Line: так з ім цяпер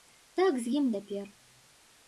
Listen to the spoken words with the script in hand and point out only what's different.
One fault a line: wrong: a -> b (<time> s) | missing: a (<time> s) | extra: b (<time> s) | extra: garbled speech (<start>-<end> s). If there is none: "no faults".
no faults